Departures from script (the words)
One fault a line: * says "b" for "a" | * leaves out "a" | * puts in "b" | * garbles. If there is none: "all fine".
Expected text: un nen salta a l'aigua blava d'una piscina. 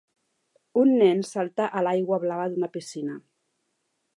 all fine